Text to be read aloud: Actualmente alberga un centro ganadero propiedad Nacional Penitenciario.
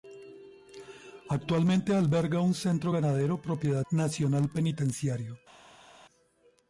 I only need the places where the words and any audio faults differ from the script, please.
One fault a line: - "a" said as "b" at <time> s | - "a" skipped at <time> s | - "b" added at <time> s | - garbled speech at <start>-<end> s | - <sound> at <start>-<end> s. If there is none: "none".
none